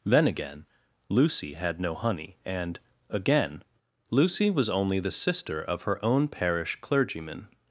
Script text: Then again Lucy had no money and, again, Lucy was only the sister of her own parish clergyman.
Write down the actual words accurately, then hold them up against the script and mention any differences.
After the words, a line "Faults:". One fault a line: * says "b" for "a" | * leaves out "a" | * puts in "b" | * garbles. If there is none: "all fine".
Then again Lucy had no honey and, again, Lucy was only the sister of her own parish clergyman.
Faults:
* says "honey" for "money"